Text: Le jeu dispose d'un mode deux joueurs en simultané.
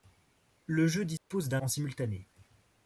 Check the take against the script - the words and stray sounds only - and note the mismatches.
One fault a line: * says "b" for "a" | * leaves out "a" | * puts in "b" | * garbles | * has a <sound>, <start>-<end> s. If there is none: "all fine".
* has a dropout, 1.2-1.3 s
* leaves out "mode deux joueurs"